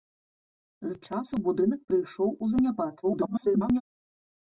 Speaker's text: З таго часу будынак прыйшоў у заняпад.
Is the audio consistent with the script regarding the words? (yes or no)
no